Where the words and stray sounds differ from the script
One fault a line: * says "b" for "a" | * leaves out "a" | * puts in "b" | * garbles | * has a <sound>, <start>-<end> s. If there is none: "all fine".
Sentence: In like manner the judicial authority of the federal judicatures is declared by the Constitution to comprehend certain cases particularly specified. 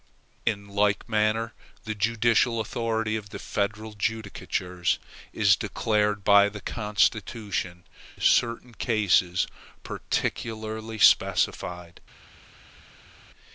* leaves out "to comprehend"